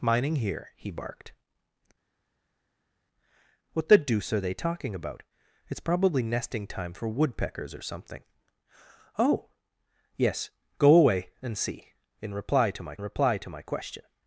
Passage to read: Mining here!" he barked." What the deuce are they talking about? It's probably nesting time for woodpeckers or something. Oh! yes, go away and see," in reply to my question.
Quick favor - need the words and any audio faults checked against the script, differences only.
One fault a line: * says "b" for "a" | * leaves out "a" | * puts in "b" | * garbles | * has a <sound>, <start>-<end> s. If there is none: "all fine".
* puts in "reply to my"